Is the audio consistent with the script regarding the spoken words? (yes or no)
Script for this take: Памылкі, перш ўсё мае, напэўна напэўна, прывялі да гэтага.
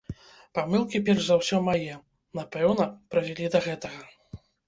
no